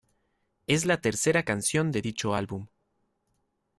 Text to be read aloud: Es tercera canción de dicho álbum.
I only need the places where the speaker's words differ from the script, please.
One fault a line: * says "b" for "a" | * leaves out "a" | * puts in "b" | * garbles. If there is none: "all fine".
* puts in "la"